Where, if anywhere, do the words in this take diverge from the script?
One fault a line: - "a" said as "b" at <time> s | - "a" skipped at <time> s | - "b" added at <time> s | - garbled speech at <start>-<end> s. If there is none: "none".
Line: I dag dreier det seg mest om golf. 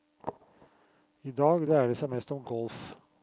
none